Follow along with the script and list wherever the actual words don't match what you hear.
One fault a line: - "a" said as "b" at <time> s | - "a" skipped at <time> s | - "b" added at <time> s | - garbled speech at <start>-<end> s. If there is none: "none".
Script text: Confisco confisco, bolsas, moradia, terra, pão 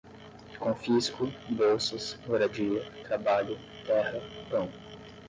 - "confisco" skipped at 1.3 s
- "trabalho" added at 3.0 s